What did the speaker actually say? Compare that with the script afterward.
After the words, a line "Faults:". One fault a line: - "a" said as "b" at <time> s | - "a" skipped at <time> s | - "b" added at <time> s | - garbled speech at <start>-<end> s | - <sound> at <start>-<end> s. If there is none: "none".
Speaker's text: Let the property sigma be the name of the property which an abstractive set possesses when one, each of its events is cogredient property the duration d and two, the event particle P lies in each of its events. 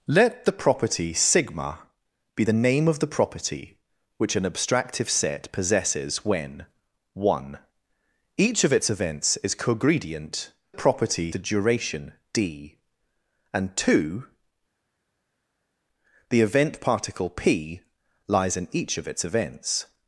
Let the property sigma be the name of the property which an abstractive set possesses when one, each of its events is cogredient property the duration d and two, the event particle P lies in each of its events.
Faults:
none